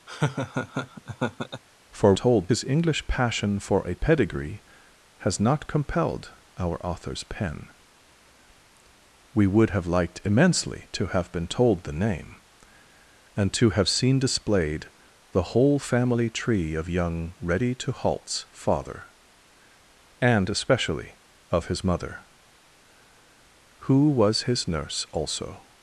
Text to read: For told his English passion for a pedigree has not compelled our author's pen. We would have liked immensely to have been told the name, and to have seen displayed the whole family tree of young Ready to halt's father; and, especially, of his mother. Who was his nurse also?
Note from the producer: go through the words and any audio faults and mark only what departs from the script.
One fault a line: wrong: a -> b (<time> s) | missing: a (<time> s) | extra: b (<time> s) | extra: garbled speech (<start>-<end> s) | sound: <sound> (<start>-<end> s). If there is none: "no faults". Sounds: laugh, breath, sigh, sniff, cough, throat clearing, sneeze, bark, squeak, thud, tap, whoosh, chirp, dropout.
sound: laugh (0.1-1.6 s)